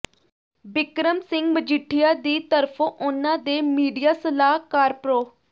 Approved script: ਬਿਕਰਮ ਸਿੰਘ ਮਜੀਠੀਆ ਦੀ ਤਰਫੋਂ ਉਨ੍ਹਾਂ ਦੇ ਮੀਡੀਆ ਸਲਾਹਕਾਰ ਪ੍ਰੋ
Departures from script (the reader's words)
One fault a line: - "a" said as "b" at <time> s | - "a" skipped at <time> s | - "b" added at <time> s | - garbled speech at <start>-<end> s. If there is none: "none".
none